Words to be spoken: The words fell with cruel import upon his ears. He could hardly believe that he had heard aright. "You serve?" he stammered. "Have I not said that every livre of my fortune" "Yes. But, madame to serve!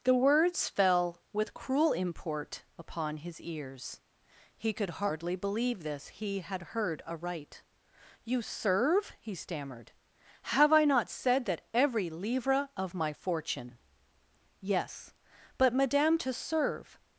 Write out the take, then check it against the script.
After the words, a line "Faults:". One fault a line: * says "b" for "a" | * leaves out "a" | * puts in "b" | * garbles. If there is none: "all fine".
The words fell with cruel import upon his ears. He could hardly believe this he had heard aright. "You serve?" he stammered. "Have I not said that every livre of my fortune" "Yes. But, madame to serve!
Faults:
* says "this" for "that"